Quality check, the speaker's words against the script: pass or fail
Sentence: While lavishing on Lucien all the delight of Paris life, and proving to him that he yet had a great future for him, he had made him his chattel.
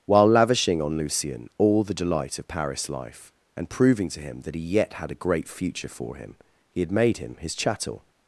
pass